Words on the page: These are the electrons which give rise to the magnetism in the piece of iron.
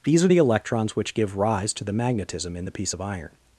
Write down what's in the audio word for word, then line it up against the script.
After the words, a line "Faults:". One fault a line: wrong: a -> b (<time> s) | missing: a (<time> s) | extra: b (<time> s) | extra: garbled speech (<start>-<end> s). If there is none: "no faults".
These are the electrons which give rise to the magnetism in the piece of iron.
Faults:
no faults